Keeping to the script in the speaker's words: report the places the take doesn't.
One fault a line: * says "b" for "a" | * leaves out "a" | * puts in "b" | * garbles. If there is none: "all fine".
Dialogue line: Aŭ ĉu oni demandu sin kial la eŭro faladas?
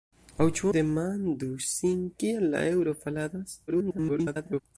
* leaves out "oni"
* garbles